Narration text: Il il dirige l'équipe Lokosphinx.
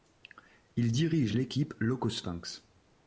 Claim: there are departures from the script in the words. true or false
true